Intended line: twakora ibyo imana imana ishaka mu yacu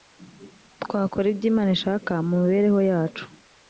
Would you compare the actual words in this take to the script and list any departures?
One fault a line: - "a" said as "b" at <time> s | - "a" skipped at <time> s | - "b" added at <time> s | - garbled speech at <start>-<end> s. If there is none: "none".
- "imana" skipped at 1.7 s
- "mibereho" added at 2.4 s